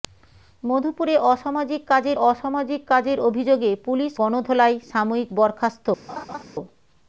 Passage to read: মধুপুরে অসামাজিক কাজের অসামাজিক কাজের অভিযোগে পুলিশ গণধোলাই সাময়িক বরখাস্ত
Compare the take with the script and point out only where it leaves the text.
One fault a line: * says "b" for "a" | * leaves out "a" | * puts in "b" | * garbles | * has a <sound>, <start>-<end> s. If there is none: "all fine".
* has a laugh, 6.1-6.4 s